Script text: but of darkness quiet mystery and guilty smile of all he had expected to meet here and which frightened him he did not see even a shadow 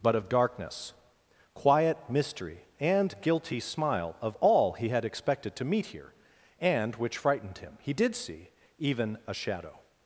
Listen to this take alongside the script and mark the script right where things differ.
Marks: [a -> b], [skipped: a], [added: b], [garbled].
but of darkness quiet mystery and guilty smile of all he had expected to meet here and which frightened him he did [skipped: not] see even a shadow